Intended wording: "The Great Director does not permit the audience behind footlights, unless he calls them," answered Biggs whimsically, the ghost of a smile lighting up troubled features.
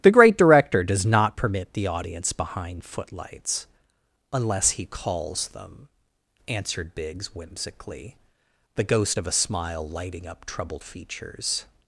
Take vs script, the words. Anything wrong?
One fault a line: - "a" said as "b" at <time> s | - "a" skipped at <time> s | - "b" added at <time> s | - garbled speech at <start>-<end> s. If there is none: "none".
none